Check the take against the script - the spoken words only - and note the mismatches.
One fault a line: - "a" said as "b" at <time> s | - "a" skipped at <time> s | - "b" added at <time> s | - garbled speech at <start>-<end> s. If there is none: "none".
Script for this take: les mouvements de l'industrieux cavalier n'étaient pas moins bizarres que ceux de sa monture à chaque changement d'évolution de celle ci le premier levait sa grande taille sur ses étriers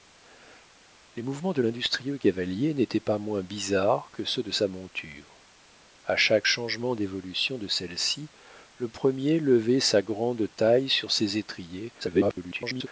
- garbled speech at 12.0-12.9 s